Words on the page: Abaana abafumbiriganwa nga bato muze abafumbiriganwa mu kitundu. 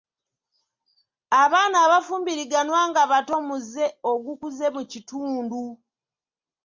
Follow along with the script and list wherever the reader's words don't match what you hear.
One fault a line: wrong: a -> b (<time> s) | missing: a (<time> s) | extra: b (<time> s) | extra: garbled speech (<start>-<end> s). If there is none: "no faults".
wrong: abafumbiriganwa -> ogukuze (4.1 s)